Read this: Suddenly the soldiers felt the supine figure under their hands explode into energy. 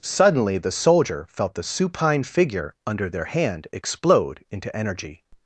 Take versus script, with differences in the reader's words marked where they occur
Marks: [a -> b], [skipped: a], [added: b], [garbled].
Suddenly the [soldiers -> soldier] felt the supine figure under their [hands -> hand] explode into energy.